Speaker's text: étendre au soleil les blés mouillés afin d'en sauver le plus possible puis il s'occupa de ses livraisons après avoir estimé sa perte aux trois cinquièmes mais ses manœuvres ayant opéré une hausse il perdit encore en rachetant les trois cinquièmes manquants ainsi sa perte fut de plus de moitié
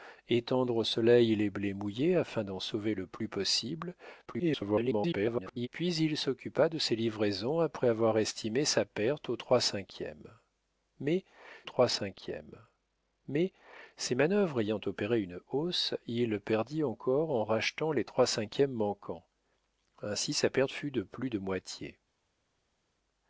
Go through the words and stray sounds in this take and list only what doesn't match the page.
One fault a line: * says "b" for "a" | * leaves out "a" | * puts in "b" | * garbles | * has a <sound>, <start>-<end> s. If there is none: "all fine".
* garbles
* puts in "trois cinquièmes mais"